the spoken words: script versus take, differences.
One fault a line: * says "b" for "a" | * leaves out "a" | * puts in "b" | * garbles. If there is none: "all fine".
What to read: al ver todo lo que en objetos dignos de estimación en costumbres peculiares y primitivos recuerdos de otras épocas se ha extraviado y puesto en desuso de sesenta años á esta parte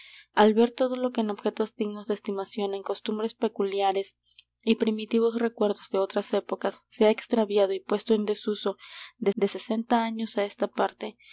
* puts in "de"